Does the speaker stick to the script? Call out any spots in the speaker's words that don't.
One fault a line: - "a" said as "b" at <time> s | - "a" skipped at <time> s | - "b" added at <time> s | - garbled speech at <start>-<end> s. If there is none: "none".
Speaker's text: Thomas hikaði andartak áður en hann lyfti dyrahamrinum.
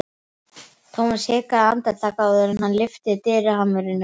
none